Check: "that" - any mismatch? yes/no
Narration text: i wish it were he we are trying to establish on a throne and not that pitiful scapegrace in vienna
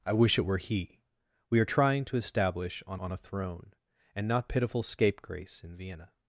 yes